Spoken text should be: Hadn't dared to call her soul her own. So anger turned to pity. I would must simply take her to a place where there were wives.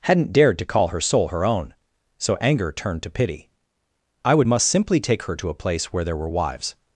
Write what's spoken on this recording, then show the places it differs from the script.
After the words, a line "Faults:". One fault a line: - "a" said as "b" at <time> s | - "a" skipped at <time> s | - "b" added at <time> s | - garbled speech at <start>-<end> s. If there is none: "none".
Hadn't dared to call her soul her own. So anger turned to pity. I would must simply take her to a place where there were wives.
Faults:
none